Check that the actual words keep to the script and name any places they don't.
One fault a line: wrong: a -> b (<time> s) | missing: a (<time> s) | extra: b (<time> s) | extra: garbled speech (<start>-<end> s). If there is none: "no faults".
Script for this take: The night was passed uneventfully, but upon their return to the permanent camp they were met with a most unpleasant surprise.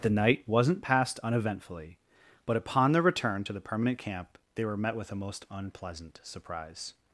wrong: was -> wasn't (0.5 s)